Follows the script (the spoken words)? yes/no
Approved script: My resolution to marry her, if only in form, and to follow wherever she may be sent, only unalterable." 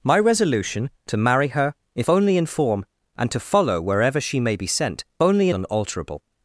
yes